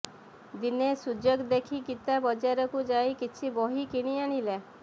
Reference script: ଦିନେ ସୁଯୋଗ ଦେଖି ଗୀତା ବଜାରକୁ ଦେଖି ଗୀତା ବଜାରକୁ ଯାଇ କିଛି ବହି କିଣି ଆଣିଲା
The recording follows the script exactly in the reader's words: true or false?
false